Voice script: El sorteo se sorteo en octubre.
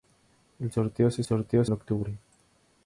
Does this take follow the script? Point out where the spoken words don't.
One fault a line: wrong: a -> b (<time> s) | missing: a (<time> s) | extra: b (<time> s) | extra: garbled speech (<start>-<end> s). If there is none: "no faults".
no faults